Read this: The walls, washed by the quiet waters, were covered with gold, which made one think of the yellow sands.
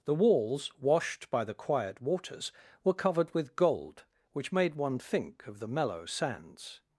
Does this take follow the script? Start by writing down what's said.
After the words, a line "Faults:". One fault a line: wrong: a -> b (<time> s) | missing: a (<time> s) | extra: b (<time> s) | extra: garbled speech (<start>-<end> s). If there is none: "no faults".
The walls, washed by the quiet waters, were covered with gold, which made one think of the mellow sands.
Faults:
wrong: yellow -> mellow (5.7 s)